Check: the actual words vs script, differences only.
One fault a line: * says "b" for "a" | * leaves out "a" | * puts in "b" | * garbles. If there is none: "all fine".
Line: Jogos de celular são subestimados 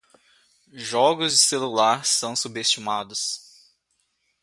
all fine